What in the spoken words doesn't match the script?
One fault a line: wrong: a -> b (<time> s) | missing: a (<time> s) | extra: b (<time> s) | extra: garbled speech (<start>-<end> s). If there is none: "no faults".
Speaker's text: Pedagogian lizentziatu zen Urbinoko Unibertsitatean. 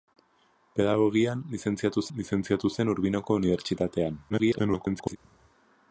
extra: lizentziatu (2.2 s)
extra: garbled speech (4.3-5.2 s)